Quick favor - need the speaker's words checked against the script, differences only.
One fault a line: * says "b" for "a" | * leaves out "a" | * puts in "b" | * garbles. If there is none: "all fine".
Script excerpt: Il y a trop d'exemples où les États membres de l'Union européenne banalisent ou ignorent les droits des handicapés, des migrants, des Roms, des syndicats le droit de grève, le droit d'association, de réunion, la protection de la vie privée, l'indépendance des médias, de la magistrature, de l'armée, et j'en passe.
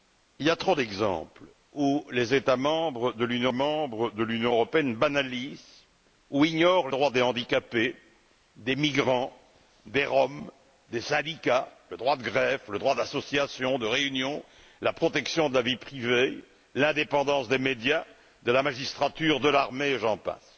* puts in "membres de l'Union"
* leaves out "les"